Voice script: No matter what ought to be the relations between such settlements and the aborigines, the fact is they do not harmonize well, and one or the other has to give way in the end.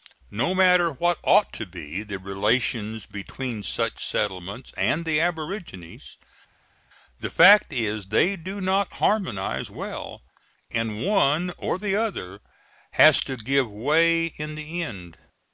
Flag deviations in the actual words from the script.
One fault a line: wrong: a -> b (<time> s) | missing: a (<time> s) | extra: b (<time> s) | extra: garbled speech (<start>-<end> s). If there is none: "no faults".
no faults